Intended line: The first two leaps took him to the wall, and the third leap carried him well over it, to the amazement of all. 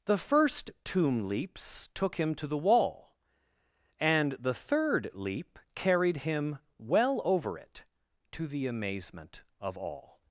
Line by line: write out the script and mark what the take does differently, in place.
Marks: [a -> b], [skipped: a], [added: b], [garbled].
The first [two -> tomb] leaps took him to the wall, and the third leap carried him well over it, to the amazement of all.